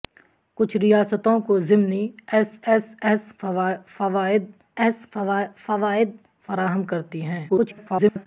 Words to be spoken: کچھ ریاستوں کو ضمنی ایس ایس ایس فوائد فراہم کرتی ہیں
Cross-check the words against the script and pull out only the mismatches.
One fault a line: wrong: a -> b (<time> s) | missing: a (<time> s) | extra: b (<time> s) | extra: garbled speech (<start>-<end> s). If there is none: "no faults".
extra: ایس فوائد (4.8 s)
extra: garbled speech (7.5-8.3 s)